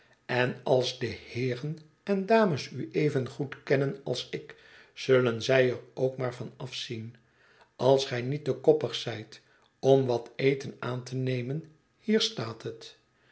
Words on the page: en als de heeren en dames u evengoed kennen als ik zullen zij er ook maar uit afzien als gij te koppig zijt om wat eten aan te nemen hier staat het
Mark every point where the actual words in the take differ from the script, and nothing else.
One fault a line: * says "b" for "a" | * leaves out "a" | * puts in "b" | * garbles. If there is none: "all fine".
* says "van" for "uit"
* puts in "niet"